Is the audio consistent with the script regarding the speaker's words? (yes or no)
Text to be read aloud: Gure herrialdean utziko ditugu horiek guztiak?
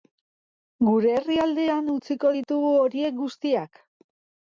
yes